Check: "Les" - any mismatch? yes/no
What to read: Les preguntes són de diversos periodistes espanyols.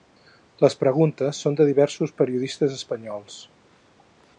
no